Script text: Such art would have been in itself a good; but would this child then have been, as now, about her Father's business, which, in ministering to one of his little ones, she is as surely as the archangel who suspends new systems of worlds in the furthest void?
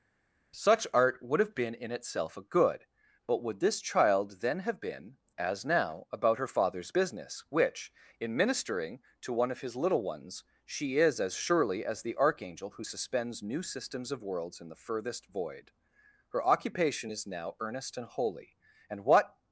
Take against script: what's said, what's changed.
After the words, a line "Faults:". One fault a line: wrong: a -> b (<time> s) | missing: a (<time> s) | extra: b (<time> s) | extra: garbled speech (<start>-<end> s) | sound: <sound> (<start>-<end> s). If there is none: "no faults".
Such art would have been in itself a good; but would this child then have been, as now, about her Father's business, which, in ministering to one of his little ones, she is as surely as the archangel who suspends new systems of worlds in the furthest void? Her occupation is now earnest and holy; and what
Faults:
extra: Her occupation is now earnest and holy and what (16.3 s)